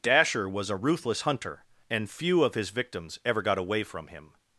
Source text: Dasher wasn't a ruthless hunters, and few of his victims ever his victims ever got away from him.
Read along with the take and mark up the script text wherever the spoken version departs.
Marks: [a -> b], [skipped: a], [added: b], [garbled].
Dasher [wasn't -> was] a ruthless [hunters, -> hunter] and few of his victims ever [skipped: his victims ever] got away from him.